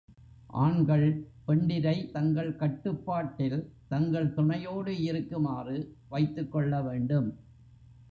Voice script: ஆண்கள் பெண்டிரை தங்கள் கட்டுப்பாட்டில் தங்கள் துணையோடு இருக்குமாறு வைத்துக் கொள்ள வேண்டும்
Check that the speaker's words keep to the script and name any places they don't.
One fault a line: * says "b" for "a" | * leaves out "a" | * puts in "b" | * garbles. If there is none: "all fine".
all fine